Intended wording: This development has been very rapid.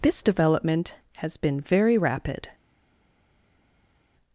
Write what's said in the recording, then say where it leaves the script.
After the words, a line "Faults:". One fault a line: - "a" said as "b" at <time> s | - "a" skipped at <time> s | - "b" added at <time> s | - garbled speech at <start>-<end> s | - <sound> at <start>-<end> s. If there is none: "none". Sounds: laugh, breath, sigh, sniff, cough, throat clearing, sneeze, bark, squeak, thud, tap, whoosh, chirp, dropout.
This development has been very rapid.
Faults:
none